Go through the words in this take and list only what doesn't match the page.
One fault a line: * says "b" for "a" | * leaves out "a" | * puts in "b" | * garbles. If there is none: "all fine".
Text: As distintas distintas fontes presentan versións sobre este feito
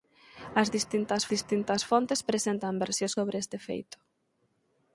all fine